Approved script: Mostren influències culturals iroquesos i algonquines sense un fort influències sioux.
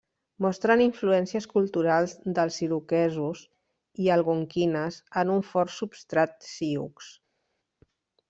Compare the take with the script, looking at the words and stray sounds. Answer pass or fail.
fail